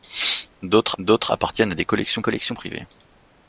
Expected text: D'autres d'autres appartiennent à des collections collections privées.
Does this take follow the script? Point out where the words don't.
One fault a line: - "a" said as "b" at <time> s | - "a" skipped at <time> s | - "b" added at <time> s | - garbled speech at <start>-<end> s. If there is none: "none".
none